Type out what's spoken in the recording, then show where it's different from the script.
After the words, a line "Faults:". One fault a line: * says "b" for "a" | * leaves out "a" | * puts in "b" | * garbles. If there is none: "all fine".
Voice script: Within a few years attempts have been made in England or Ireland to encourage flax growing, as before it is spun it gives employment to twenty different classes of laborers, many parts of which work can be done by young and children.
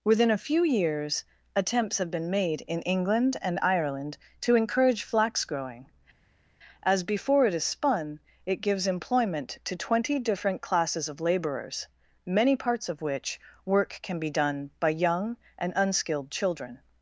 Within a few years attempts have been made in England and Ireland to encourage flax growing, as before it is spun it gives employment to twenty different classes of laborers, many parts of which work can be done by young and unskilled children.
Faults:
* says "and" for "or"
* puts in "unskilled"